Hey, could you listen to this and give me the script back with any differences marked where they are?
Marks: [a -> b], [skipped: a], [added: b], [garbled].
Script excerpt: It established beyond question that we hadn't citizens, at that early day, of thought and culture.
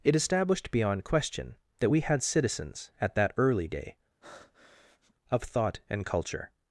It established beyond question that we [hadn't -> had] citizens, at that early day, of thought and culture.